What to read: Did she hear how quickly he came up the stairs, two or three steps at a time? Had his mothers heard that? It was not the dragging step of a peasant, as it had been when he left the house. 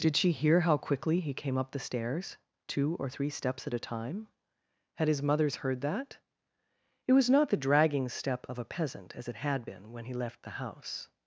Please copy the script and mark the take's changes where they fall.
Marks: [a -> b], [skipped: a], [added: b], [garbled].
Did she hear how quickly he came up the stairs, two or three steps at a time? Had his mothers heard that? It was not the dragging step of a peasant, as it had been when he left the house.